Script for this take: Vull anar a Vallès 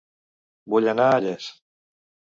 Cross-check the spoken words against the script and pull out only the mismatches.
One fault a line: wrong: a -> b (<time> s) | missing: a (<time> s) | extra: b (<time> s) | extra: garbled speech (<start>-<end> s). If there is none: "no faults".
no faults